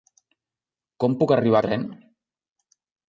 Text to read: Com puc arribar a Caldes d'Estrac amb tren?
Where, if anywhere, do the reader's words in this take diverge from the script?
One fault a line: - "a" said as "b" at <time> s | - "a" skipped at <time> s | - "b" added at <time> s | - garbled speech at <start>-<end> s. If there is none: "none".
- "Caldes d'Estrac amb" skipped at 1.6 s